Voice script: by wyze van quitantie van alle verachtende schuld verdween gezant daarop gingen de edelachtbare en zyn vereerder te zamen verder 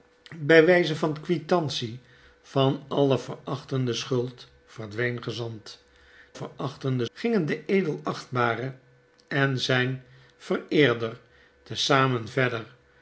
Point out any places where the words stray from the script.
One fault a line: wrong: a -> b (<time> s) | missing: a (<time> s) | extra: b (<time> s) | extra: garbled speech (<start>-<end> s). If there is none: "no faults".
wrong: daarop -> verachtende (6.3 s)